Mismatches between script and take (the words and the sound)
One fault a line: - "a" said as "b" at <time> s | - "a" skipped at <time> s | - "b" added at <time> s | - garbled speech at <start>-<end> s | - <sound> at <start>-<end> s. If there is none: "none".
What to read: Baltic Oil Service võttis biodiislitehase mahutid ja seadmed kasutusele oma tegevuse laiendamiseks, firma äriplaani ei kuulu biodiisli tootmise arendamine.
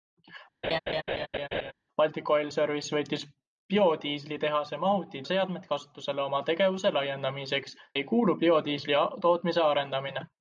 - laugh at 0.6-1.7 s
- "ja" skipped at 5.3 s
- "firma äriplaani" skipped at 7.8 s